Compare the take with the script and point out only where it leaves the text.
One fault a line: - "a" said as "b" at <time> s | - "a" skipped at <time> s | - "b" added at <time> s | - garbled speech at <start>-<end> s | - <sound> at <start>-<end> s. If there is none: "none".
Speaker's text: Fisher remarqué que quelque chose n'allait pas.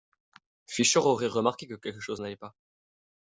- "aurait" added at 1.0 s